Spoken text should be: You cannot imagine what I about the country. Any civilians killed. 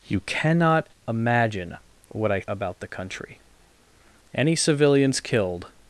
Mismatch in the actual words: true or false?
false